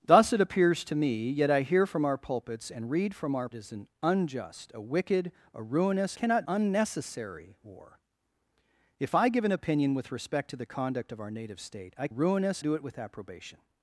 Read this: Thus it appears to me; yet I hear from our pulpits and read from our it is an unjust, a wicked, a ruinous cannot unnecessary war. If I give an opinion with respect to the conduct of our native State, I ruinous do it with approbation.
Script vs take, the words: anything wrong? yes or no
no